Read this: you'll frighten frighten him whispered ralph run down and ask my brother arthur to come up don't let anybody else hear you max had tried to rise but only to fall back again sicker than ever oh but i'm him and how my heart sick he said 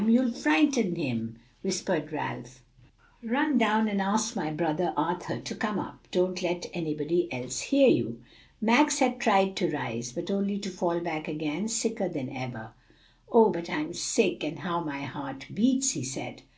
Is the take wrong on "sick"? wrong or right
wrong